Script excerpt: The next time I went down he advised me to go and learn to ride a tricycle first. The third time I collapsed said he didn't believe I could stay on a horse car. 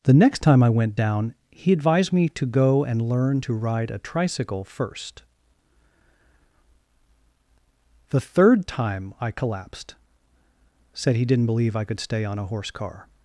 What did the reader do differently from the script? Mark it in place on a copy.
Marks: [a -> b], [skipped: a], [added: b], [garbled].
The next time I went down he advised me to go and learn to ride a tricycle first. The third time I collapsed said he didn't believe I could stay on a horse car.